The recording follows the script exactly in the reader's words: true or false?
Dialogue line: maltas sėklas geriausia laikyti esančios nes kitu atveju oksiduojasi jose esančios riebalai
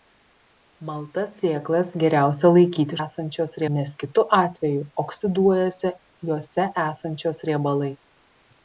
true